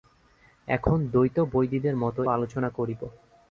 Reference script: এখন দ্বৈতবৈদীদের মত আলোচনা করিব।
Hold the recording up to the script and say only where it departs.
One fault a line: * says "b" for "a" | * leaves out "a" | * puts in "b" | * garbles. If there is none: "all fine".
all fine